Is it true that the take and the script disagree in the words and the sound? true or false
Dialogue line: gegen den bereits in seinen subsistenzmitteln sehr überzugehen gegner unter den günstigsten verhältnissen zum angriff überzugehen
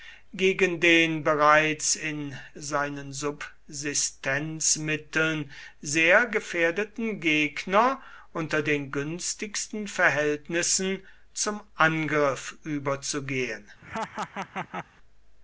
true